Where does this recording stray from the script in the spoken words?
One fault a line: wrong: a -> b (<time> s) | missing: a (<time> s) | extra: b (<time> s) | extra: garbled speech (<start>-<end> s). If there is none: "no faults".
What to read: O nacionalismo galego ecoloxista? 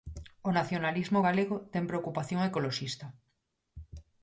extra: ten preocupación (1.7 s)